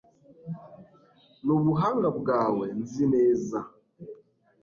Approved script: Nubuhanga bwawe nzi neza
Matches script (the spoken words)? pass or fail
pass